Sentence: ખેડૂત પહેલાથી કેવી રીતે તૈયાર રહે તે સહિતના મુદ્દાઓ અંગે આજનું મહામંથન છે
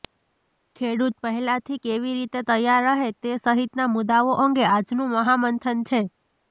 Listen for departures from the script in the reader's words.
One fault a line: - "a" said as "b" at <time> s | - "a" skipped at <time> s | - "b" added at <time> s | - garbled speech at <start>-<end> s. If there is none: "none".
none